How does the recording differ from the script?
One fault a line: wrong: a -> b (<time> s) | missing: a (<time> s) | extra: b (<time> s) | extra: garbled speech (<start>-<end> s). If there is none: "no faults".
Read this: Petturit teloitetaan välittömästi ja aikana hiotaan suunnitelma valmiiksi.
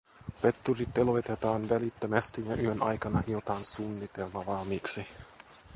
extra: yön (2.5 s)